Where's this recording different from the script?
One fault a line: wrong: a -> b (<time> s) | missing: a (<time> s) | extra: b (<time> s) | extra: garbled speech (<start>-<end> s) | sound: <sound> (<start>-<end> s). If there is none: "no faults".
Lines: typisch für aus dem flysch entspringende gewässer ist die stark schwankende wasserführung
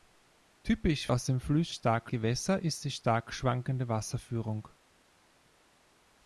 missing: für (1.1 s)
wrong: entspringende -> stark (1.7 s)